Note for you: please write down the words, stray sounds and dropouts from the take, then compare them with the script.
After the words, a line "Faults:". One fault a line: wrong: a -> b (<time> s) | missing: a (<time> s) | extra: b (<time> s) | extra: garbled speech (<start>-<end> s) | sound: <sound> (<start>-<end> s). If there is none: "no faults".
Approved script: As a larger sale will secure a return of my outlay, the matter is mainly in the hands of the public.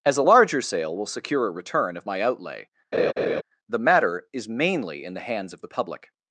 As a larger sale will secure a return of my outlay, the matter is mainly in the hands of the public.
Faults:
sound: laugh (2.9-3.4 s)